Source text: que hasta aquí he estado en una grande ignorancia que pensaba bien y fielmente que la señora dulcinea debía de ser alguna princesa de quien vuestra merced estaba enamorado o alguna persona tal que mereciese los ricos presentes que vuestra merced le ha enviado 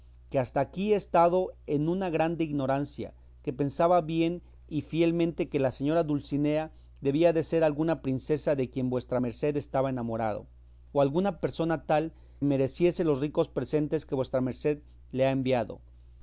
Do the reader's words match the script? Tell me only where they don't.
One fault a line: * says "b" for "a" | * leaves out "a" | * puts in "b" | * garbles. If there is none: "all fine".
* leaves out "que"